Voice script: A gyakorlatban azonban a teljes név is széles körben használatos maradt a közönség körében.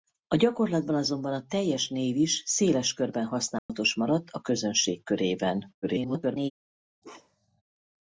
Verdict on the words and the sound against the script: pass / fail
fail